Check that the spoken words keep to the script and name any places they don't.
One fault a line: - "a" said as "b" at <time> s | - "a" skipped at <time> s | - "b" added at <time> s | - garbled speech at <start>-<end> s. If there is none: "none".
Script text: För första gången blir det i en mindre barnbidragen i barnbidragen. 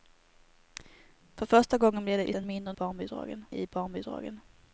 none